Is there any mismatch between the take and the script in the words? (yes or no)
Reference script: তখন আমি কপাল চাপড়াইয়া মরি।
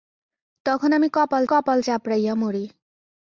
yes